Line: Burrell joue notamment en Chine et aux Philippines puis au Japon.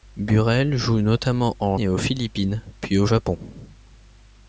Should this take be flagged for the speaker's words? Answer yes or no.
yes